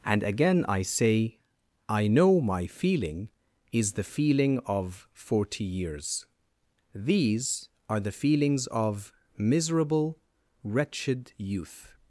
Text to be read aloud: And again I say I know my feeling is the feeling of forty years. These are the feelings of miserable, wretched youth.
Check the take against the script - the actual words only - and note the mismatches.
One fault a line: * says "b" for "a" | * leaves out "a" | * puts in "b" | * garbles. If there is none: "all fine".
all fine